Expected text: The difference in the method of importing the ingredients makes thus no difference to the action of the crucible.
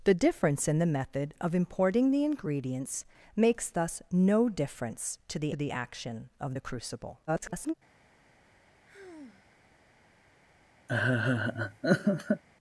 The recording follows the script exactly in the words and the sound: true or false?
false